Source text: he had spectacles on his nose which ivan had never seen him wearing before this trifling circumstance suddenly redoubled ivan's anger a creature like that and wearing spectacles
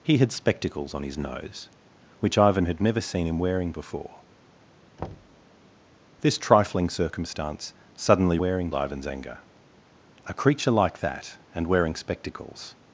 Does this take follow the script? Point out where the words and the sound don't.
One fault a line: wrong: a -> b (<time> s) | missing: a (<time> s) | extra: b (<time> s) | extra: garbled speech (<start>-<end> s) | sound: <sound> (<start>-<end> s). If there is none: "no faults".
sound: thud (5.0-5.4 s)
wrong: redoubled -> wearing (8.4 s)